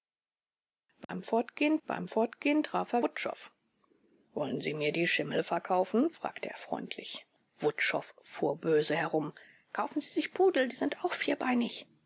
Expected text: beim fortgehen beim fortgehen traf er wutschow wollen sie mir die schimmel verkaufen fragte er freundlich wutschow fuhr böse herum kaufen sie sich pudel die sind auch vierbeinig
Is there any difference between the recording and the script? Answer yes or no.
no